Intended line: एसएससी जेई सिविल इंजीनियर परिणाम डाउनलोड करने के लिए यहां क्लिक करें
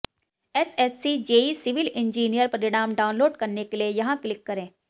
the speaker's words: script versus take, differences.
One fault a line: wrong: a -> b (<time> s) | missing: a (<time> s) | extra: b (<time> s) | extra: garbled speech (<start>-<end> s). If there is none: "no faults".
no faults